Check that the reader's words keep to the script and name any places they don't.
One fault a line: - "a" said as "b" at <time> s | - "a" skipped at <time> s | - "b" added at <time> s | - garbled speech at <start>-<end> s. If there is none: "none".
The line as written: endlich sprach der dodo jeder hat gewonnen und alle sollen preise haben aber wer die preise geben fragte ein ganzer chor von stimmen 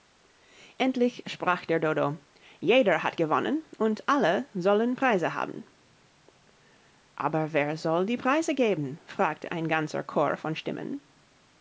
- "soll" added at 7.8 s